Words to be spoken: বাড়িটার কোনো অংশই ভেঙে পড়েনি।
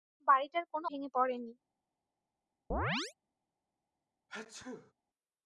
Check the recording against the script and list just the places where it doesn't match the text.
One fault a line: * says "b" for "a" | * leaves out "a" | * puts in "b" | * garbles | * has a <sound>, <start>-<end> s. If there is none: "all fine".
* leaves out "অংশই"
* has a chirp, 2.7-3.1 s
* has a sneeze, 4.3-4.9 s